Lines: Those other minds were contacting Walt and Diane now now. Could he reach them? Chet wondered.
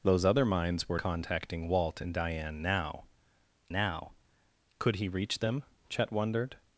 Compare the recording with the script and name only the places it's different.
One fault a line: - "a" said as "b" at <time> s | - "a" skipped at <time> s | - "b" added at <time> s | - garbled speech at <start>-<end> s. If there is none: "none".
none